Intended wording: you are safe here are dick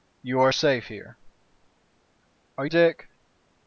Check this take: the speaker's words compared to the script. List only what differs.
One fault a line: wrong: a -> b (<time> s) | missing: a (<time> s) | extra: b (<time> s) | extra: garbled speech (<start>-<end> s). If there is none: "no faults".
no faults